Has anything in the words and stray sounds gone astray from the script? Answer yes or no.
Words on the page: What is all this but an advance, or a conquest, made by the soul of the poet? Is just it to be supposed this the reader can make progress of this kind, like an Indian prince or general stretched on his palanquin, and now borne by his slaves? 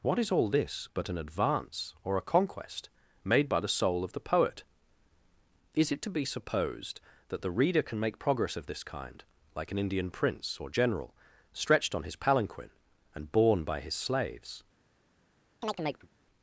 yes